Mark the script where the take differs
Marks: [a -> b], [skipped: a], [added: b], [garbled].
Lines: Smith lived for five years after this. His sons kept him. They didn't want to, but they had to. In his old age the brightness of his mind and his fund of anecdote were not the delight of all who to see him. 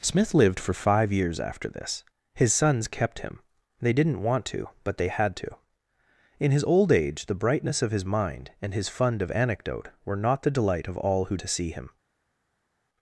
Smith lived for five years after this. His sons kept him. They didn't want to, but they had to. In his old age the brightness of his mind and his fund of anecdote were not the delight of all who to see him.